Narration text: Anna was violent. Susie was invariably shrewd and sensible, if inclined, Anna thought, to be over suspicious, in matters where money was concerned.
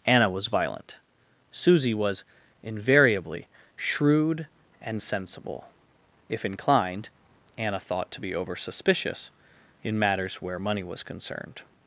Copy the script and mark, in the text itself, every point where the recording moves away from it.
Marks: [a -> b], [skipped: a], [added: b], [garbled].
Anna was violent. Susie was invariably shrewd and sensible, if inclined, Anna thought, to be over suspicious, in matters where money was concerned.